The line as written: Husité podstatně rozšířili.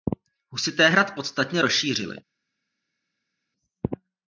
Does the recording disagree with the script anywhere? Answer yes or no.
yes